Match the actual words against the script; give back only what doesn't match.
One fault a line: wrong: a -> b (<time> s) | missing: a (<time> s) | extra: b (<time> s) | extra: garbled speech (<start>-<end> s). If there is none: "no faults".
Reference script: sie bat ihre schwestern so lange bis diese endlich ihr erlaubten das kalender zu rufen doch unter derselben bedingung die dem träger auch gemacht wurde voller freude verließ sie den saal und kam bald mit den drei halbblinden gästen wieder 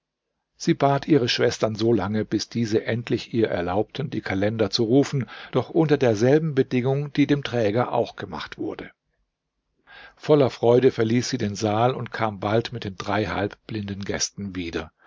wrong: das -> die (4.1 s)